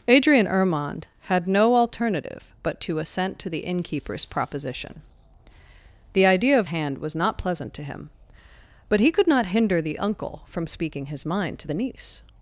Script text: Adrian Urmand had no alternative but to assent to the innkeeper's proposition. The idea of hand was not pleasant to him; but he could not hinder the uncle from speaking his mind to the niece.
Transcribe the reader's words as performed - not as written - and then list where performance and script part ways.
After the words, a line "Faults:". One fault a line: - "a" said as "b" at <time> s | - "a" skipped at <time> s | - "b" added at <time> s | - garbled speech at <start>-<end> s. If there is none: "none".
Adrian Urmand had no alternative but to assent to the innkeeper's proposition. The idea of hand was not pleasant to him; but he could not hinder the uncle from speaking his mind to the niece.
Faults:
none